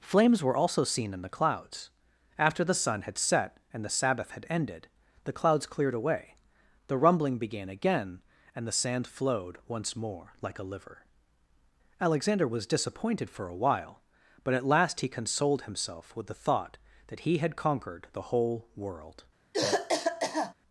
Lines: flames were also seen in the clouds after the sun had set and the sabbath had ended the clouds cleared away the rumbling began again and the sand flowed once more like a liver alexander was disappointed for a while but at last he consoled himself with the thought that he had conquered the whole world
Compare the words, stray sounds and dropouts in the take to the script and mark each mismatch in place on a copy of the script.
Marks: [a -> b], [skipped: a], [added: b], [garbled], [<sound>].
flames were also seen in the clouds after the sun had set and the sabbath had ended the clouds cleared away the rumbling began again and the sand flowed once more like a liver alexander was disappointed for a while but at last he consoled himself with the thought that he had conquered the whole world [cough]